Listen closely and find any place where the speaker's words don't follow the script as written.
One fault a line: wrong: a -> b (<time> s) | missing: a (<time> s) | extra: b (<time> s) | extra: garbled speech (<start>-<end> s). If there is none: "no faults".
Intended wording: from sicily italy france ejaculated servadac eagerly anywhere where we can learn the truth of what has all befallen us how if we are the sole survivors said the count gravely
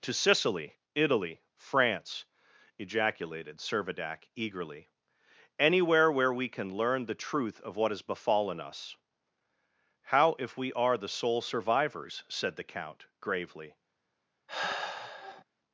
wrong: from -> to (0.0 s)
missing: all (8.0 s)